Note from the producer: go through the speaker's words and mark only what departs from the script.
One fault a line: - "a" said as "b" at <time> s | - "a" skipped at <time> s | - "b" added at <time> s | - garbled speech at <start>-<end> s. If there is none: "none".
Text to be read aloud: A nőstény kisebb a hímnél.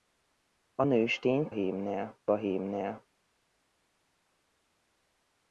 - "kisebb" said as "hímnél" at 1.5 s